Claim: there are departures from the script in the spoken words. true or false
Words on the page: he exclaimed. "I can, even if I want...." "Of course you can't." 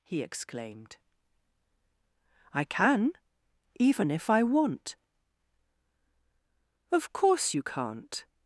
false